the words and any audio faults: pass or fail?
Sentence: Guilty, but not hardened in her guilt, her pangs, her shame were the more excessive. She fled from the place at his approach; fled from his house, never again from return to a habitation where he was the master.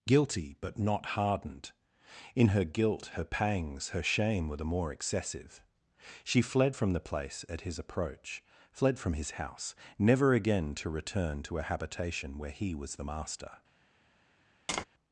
fail